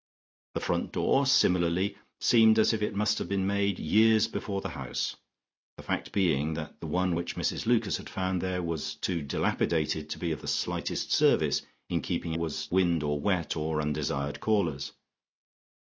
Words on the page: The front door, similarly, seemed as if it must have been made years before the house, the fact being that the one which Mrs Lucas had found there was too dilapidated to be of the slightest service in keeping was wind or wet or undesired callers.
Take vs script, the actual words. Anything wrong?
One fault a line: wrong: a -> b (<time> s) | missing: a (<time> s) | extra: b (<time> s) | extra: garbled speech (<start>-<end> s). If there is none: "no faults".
no faults